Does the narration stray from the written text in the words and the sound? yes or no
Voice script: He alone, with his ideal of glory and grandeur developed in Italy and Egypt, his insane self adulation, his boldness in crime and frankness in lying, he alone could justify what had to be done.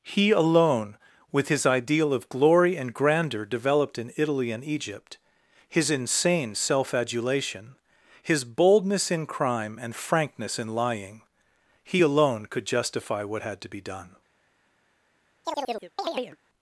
yes